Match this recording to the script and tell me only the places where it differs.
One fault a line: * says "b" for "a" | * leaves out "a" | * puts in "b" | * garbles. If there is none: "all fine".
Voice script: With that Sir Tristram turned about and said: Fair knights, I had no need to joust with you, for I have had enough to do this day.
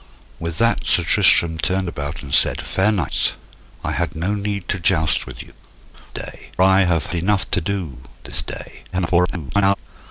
* says "day" for "for"
* leaves out "had"
* garbles